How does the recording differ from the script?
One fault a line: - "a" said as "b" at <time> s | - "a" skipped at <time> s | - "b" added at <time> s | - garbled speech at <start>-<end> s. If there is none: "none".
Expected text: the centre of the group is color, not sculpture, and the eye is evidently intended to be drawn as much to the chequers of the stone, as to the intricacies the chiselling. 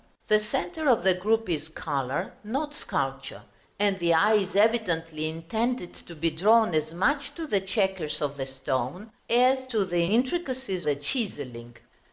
none